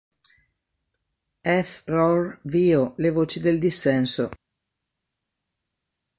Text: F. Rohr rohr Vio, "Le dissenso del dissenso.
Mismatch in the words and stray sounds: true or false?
true